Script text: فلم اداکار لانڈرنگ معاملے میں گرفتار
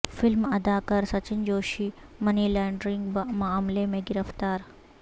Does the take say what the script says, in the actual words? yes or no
no